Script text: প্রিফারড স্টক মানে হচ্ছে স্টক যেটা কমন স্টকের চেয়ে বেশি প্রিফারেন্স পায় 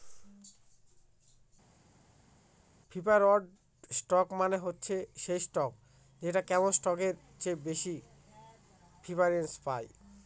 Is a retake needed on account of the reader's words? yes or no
yes